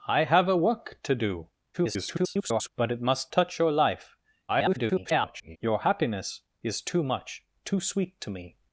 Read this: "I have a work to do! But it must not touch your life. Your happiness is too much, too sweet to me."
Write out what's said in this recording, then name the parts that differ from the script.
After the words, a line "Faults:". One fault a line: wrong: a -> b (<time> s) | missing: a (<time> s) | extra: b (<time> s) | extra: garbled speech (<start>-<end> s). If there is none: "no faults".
"I have a work to do! [garbled] But it must touch your life. [garbled] Your happiness is too much, too sweet to me."
Faults:
extra: garbled speech (1.7-2.7 s)
missing: not (3.3 s)
extra: garbled speech (4.5-5.6 s)